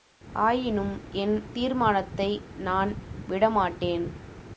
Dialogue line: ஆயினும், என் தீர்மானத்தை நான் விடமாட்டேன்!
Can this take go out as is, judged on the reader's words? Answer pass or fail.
pass